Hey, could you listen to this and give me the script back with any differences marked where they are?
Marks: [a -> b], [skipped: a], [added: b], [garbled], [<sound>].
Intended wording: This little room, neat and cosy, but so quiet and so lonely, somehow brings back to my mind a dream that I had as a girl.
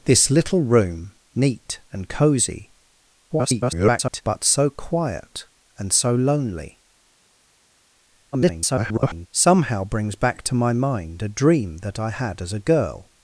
This little room, neat and cosy, [garbled] but so quiet and so lonely, [garbled] somehow brings back to my mind a dream that I had as a girl.